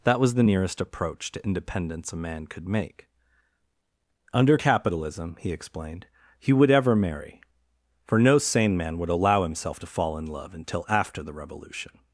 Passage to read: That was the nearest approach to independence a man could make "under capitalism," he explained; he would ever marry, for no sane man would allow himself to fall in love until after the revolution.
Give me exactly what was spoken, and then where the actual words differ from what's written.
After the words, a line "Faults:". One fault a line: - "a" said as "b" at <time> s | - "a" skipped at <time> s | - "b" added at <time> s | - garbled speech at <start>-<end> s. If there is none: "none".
That was the nearest approach to independence a man could make "under capitalism," he explained; he would ever marry, for no sane man would allow himself to fall in love until after the revolution.
Faults:
none